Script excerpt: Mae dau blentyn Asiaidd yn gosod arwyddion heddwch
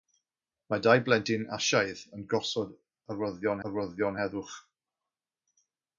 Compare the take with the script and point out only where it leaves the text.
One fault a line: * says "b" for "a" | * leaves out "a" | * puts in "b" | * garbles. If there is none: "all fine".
* puts in "arwyddion"